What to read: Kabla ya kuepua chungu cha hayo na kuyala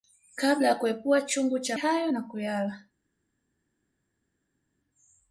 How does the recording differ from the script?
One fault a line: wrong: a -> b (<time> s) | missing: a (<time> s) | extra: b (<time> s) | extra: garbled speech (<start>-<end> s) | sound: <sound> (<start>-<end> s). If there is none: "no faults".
no faults